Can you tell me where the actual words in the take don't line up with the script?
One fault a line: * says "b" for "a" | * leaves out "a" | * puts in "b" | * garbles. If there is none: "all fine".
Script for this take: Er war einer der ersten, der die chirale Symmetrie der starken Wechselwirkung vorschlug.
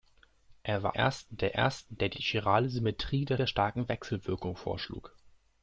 * says "ersten" for "einer"
* puts in "die"
* puts in "der"